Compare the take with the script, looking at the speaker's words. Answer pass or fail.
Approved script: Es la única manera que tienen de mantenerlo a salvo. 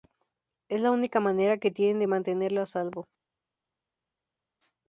pass